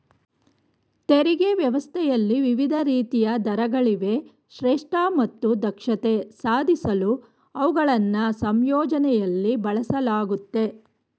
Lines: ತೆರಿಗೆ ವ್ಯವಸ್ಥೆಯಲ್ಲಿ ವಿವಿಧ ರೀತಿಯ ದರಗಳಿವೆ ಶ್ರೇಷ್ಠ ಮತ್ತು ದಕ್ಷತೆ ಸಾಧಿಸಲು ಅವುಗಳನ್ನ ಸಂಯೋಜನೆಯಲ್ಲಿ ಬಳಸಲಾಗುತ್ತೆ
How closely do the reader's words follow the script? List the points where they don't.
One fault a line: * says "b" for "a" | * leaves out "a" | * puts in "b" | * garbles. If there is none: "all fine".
all fine